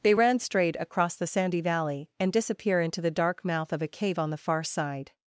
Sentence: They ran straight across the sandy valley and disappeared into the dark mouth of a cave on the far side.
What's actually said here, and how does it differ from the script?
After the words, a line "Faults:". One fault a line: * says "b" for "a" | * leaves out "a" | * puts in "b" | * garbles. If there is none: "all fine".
They ran straight across the sandy valley and disappear into the dark mouth of a cave on the far side.
Faults:
* says "disappear" for "disappeared"